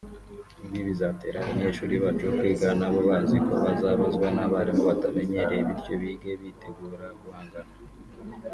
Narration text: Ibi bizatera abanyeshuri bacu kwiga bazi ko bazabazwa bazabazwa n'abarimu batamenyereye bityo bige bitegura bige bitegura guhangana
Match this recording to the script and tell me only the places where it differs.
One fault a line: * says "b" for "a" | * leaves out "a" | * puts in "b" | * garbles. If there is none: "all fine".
* puts in "nabo"
* leaves out "bazabazwa"
* leaves out "bige bitegura"